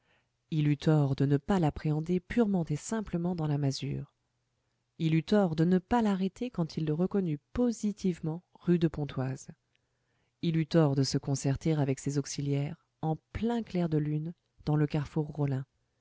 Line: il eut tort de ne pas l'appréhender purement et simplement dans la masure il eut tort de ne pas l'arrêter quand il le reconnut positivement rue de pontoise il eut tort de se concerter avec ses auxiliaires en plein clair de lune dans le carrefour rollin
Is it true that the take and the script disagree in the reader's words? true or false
false